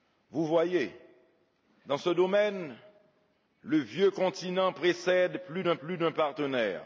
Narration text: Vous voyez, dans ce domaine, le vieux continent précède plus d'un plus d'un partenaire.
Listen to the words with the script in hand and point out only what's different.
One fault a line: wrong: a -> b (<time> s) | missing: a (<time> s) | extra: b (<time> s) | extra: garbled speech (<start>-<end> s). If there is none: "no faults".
no faults